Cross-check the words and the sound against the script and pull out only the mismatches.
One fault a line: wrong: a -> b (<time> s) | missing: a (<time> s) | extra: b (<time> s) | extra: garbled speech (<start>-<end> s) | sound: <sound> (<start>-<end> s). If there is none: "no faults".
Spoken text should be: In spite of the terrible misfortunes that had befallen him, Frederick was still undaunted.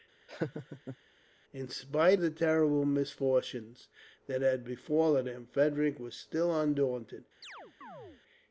sound: laugh (0.3-1.0 s)
missing: of (2.2 s)
sound: chirp (7.4-8.2 s)